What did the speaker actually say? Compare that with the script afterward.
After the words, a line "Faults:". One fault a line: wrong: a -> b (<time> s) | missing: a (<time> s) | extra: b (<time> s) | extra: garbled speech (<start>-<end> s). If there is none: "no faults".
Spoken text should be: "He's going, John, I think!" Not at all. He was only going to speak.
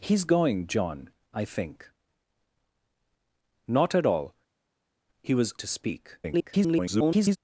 "He's going, John, I think!" Not at all. He was to speak. [garbled]
Faults:
missing: only going (5.5 s)
extra: garbled speech (6.2-7.4 s)